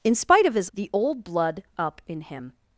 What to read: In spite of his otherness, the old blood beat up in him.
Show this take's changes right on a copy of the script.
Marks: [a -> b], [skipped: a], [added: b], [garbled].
In spite of his [skipped: otherness,] the old blood [skipped: beat] up in him.